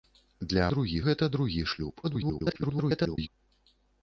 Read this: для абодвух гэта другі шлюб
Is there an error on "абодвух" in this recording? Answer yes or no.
yes